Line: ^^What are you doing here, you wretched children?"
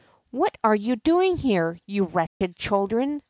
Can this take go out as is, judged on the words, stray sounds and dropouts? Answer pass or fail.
fail